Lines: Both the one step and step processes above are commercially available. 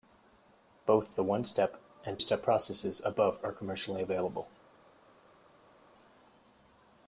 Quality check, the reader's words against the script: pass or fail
pass